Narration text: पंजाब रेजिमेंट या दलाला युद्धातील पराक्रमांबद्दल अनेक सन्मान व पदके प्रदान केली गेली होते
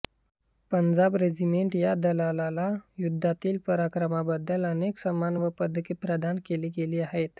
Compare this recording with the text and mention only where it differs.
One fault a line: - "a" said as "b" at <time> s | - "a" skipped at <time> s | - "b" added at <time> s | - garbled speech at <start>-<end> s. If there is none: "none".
- "होते" said as "आहेत" at 7.0 s